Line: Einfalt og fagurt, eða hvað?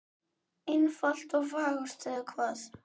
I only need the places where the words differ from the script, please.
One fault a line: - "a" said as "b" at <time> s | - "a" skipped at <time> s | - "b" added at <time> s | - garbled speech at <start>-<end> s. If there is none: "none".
none